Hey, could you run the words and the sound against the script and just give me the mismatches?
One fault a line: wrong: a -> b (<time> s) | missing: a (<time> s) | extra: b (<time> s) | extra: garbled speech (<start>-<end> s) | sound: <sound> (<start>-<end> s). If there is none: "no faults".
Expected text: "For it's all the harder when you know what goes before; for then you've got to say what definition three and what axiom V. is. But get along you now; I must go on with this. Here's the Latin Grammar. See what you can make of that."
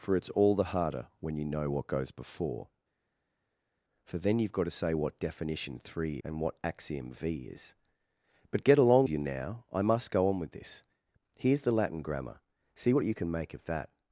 no faults